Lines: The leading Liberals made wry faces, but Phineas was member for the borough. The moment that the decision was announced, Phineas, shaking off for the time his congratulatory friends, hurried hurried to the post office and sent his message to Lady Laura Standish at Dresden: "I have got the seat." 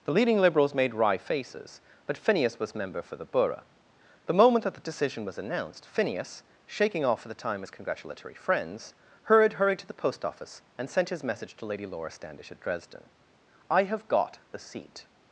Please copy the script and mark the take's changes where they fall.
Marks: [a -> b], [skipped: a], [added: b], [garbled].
The leading Liberals made wry faces, but Phineas was member for the borough. The moment that the decision was announced, Phineas, shaking off for the time his congratulatory friends, hurried hurried to the post office and sent his message to Lady Laura Standish at Dresden: "I have got the seat."